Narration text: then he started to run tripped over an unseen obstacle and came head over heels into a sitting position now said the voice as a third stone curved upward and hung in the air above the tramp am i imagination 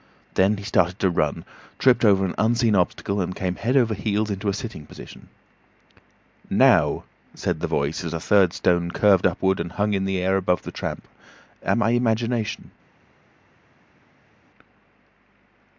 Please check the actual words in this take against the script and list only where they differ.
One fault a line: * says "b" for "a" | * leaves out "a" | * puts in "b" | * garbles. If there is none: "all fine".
all fine